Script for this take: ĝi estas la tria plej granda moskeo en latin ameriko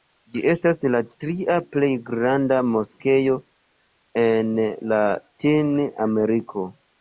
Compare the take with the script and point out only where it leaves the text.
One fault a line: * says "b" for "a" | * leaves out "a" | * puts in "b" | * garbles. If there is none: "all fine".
all fine